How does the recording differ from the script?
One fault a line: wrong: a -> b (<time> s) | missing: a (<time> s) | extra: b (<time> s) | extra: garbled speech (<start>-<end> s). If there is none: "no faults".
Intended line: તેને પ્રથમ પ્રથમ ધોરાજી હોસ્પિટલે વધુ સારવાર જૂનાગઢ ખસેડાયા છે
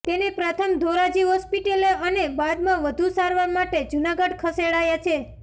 missing: પ્રથમ (0.7 s)
extra: અને બાદમાં (2.0 s)
extra: માટે (3.5 s)